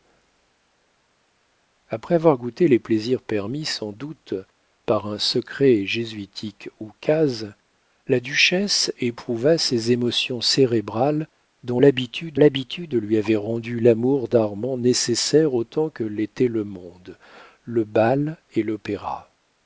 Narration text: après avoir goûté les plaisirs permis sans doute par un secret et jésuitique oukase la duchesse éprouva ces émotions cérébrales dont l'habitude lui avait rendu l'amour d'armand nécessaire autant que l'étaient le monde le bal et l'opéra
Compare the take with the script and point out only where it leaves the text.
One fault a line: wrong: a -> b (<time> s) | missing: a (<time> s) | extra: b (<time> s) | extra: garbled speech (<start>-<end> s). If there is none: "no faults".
extra: l'habitude (12.4 s)